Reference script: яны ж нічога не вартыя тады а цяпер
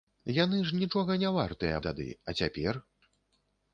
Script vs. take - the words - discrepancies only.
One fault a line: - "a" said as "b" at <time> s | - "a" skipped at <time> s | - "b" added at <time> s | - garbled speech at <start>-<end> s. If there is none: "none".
none